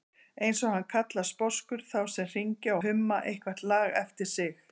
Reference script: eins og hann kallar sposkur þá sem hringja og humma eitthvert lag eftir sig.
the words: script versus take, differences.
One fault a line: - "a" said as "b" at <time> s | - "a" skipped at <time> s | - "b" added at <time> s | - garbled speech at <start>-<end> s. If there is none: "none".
- "og" skipped at 2.8 s